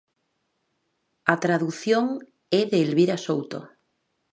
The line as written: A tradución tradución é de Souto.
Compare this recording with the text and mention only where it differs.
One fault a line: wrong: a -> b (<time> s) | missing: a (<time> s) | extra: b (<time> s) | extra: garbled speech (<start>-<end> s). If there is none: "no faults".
missing: tradución (2.0 s)
extra: Elvira (2.9 s)